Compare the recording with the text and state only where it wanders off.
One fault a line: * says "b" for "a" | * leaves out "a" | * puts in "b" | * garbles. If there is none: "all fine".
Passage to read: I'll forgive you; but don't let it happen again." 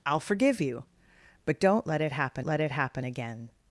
* puts in "let it happen"